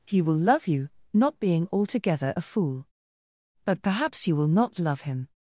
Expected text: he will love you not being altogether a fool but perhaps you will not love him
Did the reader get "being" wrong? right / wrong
right